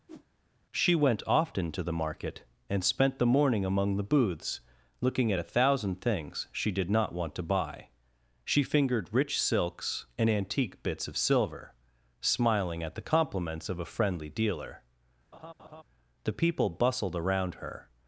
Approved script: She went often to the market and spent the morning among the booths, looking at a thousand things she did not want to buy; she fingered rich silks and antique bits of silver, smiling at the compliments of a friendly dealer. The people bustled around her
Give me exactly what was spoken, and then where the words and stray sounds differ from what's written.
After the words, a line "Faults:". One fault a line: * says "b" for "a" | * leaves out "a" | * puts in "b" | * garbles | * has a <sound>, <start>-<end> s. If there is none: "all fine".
She went often to the market and spent the morning among the booths, looking at a thousand things she did not want to buy; she fingered rich silks and antique bits of silver, smiling at the compliments of a friendly dealer. The people bustled around her
Faults:
* has a whoosh, 0.1-0.3 s
* has a laugh, 15.3-15.8 s